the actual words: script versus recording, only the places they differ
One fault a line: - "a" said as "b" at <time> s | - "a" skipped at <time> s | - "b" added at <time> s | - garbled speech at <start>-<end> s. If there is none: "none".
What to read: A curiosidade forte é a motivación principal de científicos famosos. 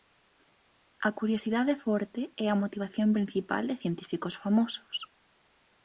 none